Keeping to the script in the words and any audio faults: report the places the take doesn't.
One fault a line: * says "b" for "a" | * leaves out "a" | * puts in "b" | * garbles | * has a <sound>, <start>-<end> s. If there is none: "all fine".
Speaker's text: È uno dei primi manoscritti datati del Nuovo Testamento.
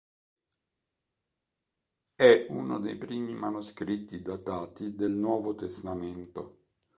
all fine